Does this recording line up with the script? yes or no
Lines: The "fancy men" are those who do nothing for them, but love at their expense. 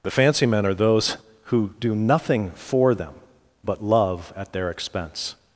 yes